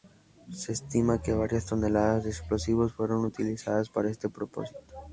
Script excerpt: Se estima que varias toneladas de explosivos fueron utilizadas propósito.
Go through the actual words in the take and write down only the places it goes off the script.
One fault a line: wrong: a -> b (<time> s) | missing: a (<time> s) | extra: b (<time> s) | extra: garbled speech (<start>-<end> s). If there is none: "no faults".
extra: para este (3.9 s)